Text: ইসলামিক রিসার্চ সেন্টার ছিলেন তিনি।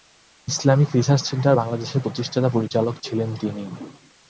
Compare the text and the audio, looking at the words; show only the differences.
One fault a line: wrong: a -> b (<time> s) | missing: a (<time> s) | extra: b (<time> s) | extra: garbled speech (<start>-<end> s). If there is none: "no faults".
extra: বাংলাদেশের প্রতিষ্ঠাতা পরিচালক (1.5 s)